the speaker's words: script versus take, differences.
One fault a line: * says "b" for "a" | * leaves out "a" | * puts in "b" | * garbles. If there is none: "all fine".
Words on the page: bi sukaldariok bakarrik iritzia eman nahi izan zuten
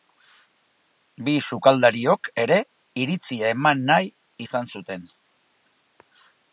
* says "ere" for "bakarrik"